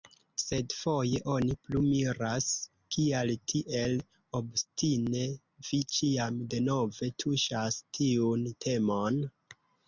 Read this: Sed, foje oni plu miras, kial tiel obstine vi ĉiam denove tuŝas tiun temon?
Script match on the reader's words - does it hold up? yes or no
yes